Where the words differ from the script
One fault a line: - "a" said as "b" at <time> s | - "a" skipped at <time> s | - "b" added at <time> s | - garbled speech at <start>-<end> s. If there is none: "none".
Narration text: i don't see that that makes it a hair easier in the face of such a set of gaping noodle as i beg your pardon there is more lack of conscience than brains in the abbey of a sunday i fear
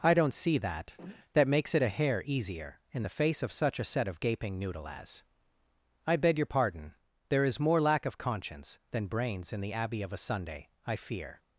none